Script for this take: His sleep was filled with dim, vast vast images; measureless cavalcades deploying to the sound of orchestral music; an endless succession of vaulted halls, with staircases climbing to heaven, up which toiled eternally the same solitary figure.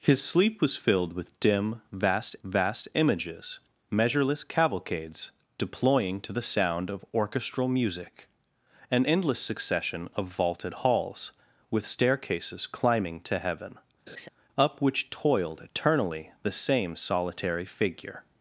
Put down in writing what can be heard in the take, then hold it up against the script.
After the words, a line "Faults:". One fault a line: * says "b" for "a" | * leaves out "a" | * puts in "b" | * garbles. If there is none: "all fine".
His sleep was filled with dim, vast vast images; measureless cavalcades deploying to the sound of orchestral music; an endless succession of vaulted halls, with staircases climbing to heaven, up which toiled eternally the same solitary figure.
Faults:
all fine